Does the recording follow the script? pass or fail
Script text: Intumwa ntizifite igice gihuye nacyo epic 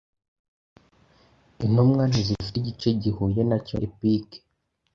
pass